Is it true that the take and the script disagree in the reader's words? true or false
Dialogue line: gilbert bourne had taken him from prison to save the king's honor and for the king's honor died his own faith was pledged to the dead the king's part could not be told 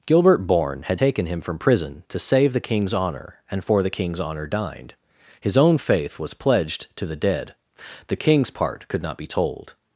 true